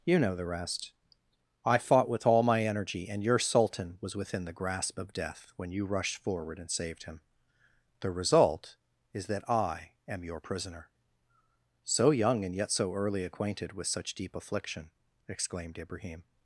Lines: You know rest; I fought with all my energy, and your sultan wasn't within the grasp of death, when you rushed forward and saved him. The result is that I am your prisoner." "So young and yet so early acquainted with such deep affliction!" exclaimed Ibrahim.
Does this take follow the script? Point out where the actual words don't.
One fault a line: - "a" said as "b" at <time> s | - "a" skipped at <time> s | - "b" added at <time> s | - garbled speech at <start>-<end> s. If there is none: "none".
- "the" added at 0.3 s
- "wasn't" said as "was" at 4.0 s